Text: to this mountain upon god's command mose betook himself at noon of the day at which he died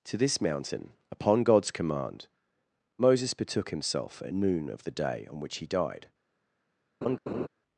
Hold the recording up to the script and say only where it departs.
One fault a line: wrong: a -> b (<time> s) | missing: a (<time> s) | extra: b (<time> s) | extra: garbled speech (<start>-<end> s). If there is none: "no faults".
wrong: mose -> moses (3.0 s)
wrong: at -> on (5.3 s)